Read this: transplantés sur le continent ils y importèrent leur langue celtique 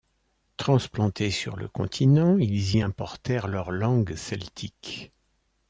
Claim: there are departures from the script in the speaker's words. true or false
false